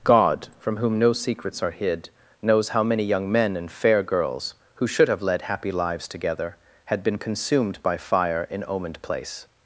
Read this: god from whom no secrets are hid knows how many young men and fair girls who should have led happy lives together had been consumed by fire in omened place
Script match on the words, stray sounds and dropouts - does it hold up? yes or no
yes